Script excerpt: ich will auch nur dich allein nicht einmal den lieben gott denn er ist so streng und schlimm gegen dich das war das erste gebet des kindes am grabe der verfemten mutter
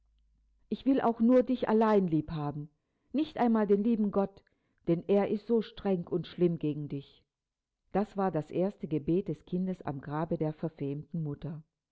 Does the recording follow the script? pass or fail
fail